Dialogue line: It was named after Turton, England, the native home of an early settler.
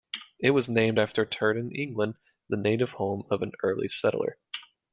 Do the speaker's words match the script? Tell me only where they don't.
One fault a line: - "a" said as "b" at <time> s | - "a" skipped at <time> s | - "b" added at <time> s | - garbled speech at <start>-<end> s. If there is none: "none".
none